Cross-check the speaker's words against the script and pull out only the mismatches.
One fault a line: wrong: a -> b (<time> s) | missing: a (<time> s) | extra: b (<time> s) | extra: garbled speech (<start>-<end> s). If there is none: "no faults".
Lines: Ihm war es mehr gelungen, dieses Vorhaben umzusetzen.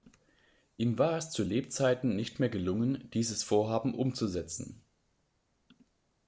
extra: zu Lebzeiten nicht (1.3 s)